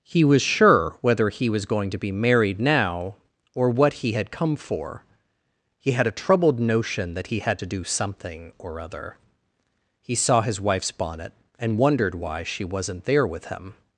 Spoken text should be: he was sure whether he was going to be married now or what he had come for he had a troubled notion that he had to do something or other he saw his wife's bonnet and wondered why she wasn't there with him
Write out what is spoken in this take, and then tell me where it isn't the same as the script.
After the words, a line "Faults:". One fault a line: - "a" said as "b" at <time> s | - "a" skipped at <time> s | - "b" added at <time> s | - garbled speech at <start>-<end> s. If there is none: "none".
he was sure whether he was going to be married now or what he had come for he had a troubled notion that he had to do something or other he saw his wife's bonnet and wondered why she wasn't there with him
Faults:
none